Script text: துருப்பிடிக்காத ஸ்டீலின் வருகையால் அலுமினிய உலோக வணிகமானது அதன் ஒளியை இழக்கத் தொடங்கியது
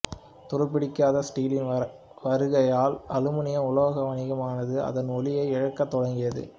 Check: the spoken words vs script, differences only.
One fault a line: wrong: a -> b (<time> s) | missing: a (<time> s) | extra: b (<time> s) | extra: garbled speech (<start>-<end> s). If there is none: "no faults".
no faults